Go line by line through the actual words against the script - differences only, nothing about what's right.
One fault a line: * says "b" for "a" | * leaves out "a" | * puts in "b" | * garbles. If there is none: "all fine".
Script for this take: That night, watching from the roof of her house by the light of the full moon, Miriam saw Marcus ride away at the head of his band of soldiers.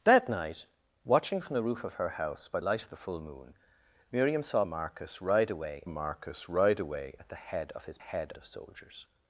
* leaves out "the"
* puts in "Marcus ride away"
* says "head" for "band"